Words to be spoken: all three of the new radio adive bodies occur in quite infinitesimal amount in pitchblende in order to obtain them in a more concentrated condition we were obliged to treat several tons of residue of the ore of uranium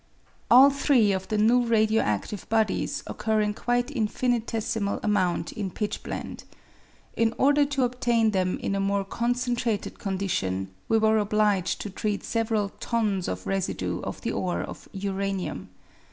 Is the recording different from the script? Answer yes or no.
no